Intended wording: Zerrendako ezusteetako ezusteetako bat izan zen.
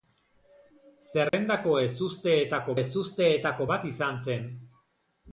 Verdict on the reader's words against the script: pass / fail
pass